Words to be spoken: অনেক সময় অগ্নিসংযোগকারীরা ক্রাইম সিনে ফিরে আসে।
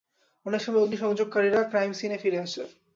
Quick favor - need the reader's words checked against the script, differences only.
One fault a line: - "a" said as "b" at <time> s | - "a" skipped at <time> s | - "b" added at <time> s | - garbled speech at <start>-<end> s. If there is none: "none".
none